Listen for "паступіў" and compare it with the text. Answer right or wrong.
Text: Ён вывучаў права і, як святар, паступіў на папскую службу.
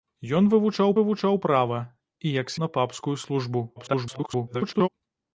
wrong